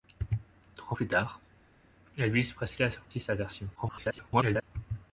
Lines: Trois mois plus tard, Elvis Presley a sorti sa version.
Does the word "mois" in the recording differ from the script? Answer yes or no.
yes